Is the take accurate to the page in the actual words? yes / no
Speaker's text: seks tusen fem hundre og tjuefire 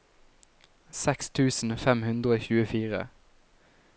yes